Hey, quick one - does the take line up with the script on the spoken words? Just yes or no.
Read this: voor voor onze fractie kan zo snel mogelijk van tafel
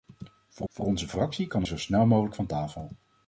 yes